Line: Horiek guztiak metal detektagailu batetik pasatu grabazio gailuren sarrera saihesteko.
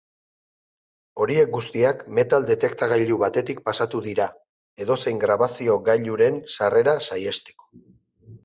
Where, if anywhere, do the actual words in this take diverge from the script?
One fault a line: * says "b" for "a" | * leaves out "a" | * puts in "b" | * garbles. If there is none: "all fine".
* puts in "dira edozein"